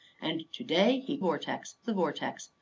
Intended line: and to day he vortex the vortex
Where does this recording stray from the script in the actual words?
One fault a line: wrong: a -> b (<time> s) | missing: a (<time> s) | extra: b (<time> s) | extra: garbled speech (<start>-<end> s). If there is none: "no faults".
no faults